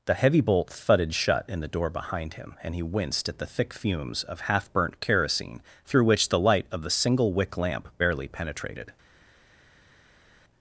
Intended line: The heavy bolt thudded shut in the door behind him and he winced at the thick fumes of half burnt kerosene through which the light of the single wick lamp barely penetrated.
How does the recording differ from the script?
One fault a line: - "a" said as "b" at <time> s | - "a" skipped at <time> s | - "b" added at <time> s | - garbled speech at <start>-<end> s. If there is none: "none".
none